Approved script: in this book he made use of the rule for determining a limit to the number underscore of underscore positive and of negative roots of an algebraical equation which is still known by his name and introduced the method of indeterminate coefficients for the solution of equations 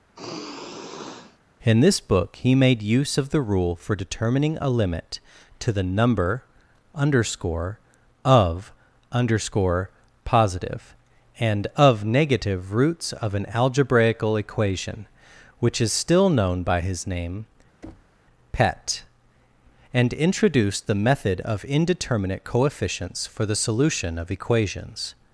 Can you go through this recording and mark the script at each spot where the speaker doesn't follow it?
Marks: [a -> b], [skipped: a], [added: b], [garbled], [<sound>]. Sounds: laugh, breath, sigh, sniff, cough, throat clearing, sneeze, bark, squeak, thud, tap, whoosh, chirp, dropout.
[sigh] in this book he made use of the rule for determining a limit to the number underscore of underscore positive and of negative roots of an algebraical equation which is still known by his name [thud] [added: pet] and introduced the method of indeterminate coefficients for the solution of equations